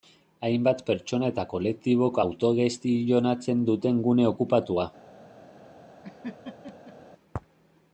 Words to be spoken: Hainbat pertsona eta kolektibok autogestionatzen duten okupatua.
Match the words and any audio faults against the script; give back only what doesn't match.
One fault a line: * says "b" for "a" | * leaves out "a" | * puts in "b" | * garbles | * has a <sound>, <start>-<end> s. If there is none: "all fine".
* puts in "gune"
* has a laugh, 6.0-7.0 s